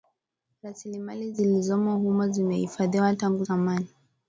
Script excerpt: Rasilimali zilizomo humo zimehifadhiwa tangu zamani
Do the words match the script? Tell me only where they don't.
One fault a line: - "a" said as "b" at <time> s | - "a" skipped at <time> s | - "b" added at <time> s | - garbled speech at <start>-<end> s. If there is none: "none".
none